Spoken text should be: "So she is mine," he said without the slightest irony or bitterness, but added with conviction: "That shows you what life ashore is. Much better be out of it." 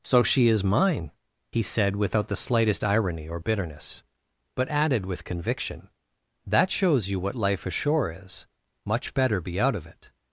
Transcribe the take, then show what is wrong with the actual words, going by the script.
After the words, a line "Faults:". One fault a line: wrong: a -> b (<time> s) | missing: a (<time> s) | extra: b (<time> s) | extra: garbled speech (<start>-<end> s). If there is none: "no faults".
"So she is mine," he said without the slightest irony or bitterness, but added with conviction: "That shows you what life ashore is. Much better be out of it."
Faults:
no faults